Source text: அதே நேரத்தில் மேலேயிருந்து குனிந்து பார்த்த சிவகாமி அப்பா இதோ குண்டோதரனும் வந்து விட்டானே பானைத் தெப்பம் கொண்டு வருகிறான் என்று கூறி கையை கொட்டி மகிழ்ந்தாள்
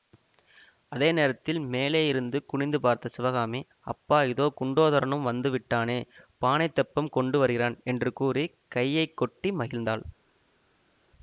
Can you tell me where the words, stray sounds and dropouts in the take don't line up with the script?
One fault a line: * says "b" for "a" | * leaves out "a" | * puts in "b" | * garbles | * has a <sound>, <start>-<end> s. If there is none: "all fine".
all fine